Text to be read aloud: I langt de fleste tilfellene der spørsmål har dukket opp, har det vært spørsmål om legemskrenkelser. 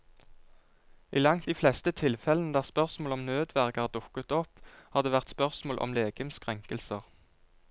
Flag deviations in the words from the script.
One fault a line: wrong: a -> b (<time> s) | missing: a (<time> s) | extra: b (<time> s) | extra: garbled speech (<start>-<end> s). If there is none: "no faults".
extra: om nødverge (3.2 s)